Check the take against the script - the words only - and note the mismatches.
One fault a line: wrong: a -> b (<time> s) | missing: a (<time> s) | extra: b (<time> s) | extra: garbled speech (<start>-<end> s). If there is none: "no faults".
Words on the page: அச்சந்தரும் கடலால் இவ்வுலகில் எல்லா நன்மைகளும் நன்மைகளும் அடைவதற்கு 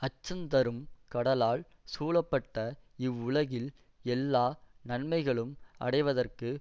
extra: சூழப்பட்ட (1.9 s)
missing: நன்மைகளும் (5.5 s)